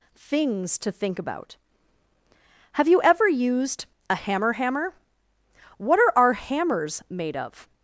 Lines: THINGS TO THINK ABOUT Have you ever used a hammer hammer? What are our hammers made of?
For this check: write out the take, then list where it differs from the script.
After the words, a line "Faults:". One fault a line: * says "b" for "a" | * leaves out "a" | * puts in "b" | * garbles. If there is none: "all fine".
THINGS TO THINK ABOUT Have you ever used a hammer hammer? What are our hammers made of?
Faults:
all fine